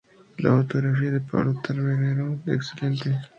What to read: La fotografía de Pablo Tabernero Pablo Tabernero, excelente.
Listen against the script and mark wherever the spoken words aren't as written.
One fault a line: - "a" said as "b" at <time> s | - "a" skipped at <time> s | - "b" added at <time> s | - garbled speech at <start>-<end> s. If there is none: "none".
- "Pablo Tabernero" skipped at 2.4 s